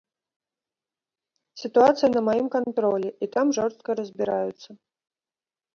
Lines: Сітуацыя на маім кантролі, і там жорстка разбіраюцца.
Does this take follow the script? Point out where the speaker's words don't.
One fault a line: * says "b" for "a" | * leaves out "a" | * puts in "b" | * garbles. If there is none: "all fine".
all fine